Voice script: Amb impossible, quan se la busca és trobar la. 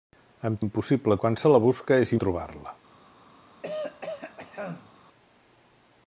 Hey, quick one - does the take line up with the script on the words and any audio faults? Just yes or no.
no